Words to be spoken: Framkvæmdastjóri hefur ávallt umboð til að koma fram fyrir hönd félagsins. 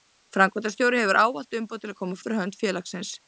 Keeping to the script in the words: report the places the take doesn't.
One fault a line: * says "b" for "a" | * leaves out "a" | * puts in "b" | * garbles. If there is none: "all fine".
* leaves out "fram"